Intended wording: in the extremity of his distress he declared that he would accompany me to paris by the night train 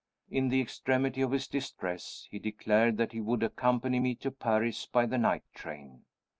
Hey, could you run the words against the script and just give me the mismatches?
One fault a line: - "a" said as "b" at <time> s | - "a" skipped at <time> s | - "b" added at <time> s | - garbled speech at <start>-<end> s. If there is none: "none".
none